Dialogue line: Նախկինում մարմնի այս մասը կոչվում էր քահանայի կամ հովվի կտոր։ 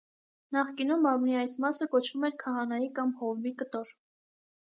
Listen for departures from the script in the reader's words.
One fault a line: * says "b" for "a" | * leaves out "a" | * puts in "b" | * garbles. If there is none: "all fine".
all fine